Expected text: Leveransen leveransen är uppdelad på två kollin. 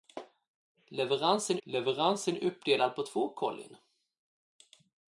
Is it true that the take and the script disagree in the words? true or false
false